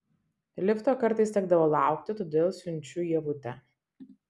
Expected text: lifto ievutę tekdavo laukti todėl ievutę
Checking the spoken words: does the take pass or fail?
fail